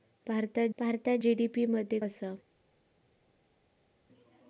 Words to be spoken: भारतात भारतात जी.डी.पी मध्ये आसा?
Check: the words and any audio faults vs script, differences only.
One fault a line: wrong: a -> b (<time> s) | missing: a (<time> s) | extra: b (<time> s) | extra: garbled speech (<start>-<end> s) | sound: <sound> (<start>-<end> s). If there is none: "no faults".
no faults